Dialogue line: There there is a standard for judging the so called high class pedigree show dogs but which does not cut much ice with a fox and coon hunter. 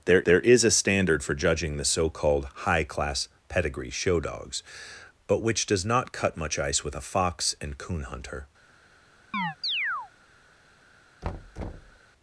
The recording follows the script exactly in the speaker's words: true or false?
true